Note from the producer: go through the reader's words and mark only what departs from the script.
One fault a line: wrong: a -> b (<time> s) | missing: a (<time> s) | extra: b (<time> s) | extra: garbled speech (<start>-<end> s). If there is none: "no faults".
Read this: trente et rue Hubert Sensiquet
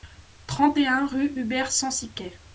extra: un (0.9 s)